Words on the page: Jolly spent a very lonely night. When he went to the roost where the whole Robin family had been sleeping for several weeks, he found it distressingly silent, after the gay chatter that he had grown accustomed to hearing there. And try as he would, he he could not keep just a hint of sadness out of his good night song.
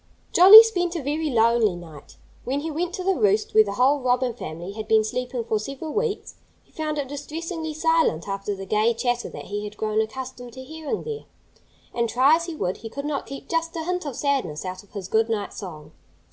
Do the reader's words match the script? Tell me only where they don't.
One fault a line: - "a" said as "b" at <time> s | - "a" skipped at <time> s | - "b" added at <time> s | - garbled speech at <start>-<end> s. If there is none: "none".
- "he" skipped at 12.9 s